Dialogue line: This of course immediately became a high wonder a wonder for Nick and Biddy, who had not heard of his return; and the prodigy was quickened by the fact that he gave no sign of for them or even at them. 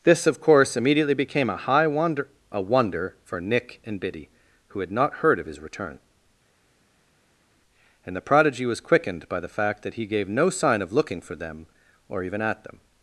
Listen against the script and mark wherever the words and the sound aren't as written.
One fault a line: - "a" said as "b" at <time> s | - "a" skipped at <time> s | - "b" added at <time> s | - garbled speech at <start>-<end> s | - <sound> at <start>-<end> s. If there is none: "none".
- "looking" added at 10.9 s